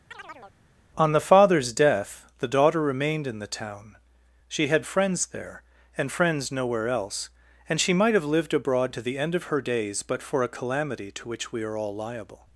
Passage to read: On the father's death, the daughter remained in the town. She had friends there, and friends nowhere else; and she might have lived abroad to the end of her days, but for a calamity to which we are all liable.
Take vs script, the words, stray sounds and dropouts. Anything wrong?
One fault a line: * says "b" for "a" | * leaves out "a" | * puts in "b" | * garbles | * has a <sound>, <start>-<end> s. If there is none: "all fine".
* has a chirp, 0.1-0.6 s